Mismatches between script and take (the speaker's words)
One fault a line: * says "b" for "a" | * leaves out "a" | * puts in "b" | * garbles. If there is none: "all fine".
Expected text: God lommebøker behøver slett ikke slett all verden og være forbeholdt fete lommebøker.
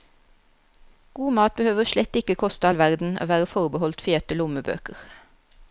* says "mat" for "lommebøker"
* says "koste" for "slett"